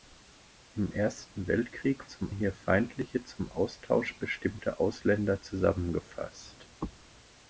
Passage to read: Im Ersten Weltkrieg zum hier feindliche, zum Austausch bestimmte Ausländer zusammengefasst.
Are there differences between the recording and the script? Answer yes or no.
no